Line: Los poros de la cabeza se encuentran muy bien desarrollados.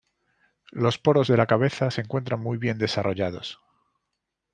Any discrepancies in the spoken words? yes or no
no